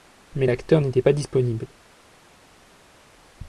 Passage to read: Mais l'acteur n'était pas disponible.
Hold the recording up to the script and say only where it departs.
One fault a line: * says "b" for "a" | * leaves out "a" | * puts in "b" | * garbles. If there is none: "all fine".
all fine